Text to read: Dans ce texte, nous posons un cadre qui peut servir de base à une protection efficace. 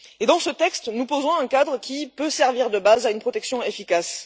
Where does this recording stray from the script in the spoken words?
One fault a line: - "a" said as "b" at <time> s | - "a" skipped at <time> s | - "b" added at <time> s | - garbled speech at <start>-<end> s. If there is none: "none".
none